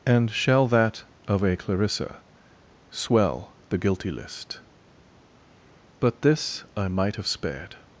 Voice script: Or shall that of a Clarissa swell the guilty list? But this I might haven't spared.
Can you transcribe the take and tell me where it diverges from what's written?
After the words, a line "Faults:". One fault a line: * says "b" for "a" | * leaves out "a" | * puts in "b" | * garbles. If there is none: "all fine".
And shall that of a Clarissa swell the guilty list? But this I might have spared.
Faults:
* says "And" for "Or"
* says "have" for "haven't"